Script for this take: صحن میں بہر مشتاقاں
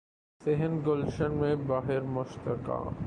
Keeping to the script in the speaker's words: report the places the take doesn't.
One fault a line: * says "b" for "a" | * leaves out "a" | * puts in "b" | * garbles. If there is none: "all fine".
* puts in "گلشن"